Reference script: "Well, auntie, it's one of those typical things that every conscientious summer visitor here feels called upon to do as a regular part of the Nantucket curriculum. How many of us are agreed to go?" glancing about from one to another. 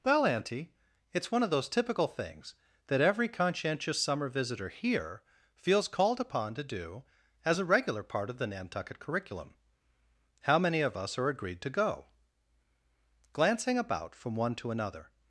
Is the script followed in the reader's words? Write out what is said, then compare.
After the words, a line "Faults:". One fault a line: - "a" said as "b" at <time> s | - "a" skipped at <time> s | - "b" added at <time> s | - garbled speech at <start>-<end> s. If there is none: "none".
"Well, auntie, it's one of those typical things that every conscientious summer visitor here feels called upon to do as a regular part of the Nantucket curriculum. How many of us are agreed to go?" glancing about from one to another.
Faults:
none